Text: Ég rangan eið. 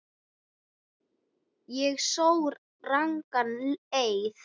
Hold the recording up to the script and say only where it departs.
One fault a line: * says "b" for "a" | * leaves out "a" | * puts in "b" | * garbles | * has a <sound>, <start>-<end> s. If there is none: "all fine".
* puts in "sór"